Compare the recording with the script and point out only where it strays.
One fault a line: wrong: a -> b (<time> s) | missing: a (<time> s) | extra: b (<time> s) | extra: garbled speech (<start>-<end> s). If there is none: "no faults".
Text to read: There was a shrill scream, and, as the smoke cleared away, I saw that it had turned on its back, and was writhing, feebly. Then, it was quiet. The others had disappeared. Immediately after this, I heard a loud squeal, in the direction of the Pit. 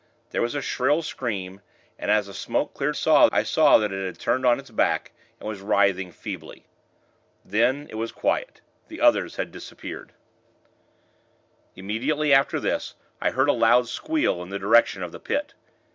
wrong: away -> saw (2.9 s)